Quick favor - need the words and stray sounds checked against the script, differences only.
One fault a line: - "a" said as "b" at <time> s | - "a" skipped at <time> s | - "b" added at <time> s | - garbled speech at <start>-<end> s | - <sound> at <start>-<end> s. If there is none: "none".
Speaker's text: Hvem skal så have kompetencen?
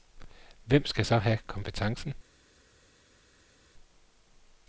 none